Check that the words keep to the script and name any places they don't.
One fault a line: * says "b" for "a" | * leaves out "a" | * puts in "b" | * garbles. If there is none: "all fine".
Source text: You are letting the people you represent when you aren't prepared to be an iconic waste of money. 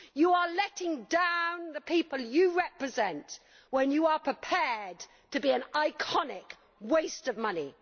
* puts in "down"
* says "are" for "aren't"